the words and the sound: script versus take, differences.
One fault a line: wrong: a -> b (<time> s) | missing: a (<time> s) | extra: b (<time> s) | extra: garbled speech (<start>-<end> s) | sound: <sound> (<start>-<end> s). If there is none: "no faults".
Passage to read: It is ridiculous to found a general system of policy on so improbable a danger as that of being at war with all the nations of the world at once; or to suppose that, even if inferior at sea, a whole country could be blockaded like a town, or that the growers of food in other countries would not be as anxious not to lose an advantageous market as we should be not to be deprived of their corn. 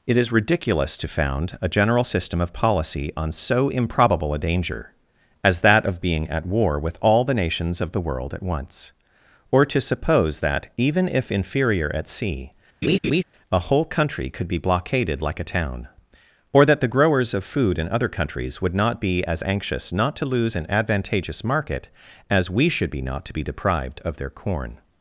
sound: laugh (12.8-13.2 s)